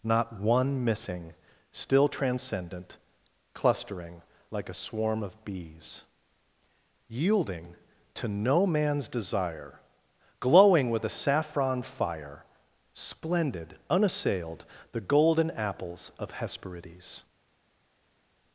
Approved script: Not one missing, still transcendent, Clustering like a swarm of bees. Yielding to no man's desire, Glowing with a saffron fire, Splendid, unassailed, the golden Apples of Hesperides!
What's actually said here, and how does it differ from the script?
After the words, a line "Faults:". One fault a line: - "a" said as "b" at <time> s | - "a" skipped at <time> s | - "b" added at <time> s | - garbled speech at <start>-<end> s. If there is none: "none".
Not one missing, still transcendent, Clustering like a swarm of bees. Yielding to no man's desire, Glowing with a saffron fire, Splendid, unassailed, the golden Apples of Hesperides!
Faults:
none